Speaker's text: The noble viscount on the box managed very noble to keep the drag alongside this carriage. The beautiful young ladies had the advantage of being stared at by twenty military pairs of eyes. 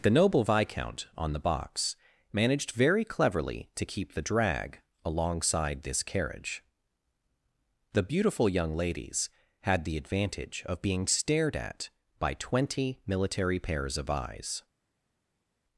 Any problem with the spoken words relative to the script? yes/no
yes